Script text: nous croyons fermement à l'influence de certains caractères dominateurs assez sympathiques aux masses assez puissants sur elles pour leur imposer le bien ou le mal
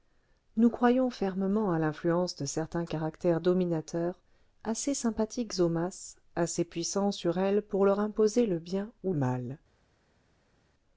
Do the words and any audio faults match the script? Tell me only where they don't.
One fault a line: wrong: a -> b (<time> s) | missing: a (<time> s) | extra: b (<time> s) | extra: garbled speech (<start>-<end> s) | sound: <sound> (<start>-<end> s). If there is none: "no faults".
missing: le (9.1 s)